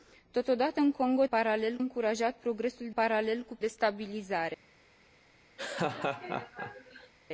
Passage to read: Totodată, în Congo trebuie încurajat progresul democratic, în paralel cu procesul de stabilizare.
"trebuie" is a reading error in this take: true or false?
true